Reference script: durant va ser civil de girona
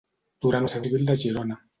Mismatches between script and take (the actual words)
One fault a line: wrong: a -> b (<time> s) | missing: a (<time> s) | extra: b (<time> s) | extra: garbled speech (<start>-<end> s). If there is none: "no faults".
no faults